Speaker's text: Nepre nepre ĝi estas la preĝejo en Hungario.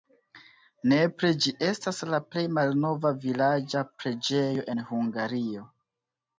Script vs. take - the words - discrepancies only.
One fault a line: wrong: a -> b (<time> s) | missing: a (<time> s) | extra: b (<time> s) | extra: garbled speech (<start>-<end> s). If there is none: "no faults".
missing: nepre (1.3 s)
extra: plej malnova vilaĝa (2.3 s)